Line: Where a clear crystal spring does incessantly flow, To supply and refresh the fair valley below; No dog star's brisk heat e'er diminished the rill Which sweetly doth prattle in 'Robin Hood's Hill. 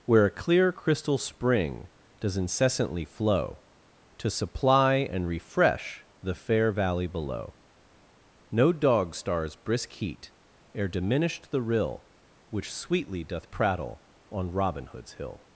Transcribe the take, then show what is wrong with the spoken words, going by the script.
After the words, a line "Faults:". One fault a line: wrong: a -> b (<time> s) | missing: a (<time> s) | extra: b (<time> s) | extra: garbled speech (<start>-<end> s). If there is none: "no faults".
Where a clear crystal spring does incessantly flow, To supply and refresh the fair valley below; No dog star's brisk heat e'er diminished the rill Which sweetly doth prattle on 'Robin Hood's Hill.
Faults:
wrong: in -> on (14.3 s)